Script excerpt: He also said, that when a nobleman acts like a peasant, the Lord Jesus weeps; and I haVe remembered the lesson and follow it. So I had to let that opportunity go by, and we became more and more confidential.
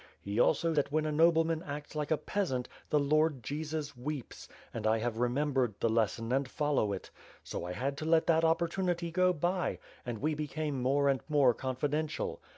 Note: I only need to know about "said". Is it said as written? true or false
false